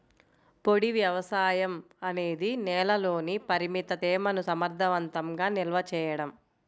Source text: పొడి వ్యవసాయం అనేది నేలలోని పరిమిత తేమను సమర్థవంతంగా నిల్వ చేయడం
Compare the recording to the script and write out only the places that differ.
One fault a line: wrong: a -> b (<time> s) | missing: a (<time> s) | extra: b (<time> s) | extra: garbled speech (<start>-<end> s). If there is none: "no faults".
no faults